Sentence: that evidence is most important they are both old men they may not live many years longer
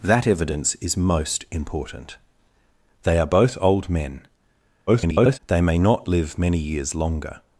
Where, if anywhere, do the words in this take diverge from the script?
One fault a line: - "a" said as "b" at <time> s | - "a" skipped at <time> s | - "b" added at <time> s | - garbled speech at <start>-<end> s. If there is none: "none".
- garbled speech at 4.9-5.4 s